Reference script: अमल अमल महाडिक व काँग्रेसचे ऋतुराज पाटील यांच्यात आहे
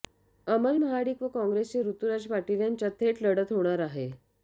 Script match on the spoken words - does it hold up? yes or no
no